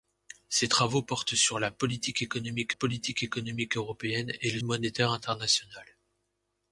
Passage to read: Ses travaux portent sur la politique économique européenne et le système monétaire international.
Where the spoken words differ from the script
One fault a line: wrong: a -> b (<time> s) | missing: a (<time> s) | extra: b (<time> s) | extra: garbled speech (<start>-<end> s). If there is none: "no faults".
extra: politique économique (2.7 s)
missing: système (4.6 s)